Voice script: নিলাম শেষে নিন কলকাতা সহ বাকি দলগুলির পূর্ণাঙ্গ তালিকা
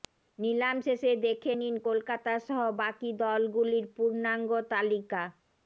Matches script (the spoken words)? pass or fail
fail